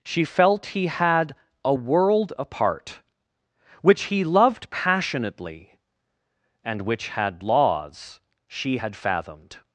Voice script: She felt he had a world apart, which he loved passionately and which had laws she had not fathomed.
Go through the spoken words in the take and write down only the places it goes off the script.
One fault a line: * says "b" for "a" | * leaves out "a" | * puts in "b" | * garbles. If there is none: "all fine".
* leaves out "not"